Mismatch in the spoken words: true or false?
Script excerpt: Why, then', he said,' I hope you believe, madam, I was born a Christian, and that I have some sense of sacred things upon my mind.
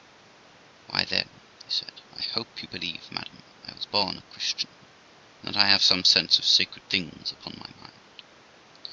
false